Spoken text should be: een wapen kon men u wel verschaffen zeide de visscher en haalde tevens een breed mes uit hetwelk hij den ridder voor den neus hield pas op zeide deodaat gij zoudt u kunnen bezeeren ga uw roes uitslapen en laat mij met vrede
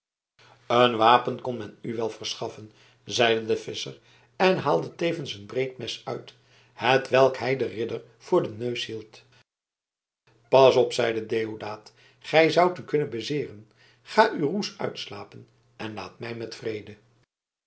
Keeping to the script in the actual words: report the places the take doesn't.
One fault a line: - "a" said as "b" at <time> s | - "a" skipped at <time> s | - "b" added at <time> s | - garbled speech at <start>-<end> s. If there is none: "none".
none